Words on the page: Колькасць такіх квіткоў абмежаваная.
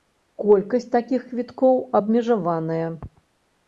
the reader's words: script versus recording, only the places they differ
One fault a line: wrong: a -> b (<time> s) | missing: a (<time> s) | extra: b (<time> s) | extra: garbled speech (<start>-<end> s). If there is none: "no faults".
no faults